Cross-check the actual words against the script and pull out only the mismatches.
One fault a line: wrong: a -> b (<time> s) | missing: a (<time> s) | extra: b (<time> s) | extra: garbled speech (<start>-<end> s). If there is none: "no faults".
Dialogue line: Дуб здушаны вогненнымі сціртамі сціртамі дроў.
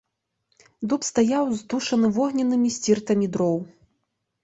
extra: стаяў (1.1 s)
missing: сціртамі (3.3 s)